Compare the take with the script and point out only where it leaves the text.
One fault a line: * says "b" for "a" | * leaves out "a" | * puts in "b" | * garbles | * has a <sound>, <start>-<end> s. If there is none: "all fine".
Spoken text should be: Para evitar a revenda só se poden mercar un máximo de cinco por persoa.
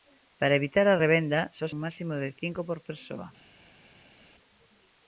* leaves out "se poden mercar"